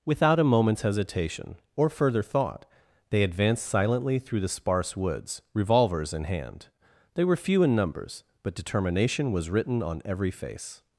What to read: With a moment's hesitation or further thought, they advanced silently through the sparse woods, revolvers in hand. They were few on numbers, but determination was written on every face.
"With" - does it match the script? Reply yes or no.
no